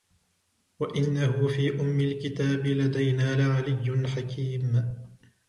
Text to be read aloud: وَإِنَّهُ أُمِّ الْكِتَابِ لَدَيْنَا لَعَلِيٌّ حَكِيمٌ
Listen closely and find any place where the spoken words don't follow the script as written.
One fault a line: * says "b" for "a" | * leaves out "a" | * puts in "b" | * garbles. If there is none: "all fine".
* puts in "فِي"